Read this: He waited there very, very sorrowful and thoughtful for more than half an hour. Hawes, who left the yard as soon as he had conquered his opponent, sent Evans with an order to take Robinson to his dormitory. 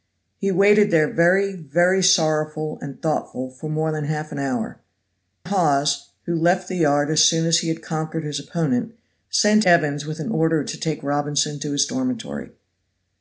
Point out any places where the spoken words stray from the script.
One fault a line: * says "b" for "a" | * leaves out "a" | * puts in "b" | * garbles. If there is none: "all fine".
all fine